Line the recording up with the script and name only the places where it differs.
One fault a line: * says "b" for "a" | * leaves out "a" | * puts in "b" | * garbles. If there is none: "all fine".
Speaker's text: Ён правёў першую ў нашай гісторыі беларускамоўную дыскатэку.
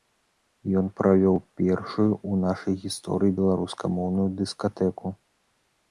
all fine